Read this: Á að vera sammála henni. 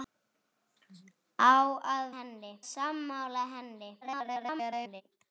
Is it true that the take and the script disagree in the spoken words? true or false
true